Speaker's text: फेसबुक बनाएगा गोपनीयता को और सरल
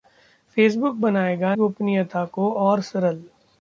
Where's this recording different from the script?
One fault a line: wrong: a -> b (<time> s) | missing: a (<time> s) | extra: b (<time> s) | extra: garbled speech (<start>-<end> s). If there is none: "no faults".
no faults